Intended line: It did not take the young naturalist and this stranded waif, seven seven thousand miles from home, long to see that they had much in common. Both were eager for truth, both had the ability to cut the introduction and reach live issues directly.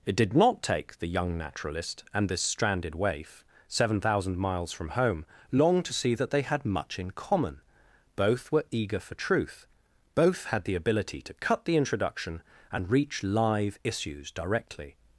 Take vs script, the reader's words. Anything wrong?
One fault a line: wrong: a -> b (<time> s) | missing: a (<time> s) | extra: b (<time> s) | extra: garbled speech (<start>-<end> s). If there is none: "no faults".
missing: seven (4.0 s)